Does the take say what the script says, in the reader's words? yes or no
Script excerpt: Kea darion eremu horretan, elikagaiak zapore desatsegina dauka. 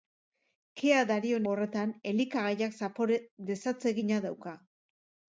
no